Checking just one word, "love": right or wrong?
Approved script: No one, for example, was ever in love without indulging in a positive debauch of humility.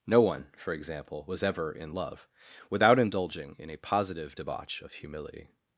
right